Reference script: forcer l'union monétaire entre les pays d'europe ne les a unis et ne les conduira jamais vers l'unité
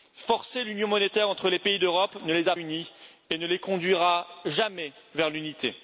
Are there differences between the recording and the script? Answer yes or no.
no